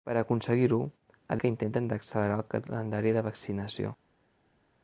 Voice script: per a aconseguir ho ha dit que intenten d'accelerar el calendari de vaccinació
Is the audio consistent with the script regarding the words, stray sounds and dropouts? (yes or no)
no